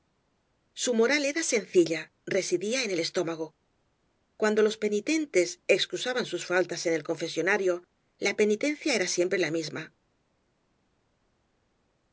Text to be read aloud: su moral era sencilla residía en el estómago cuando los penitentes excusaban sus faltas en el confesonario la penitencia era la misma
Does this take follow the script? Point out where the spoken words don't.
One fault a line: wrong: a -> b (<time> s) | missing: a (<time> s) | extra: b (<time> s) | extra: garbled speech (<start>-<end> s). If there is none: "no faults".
extra: siempre (9.1 s)